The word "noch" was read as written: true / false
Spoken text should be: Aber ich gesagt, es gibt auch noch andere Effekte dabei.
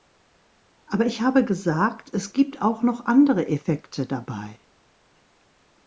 true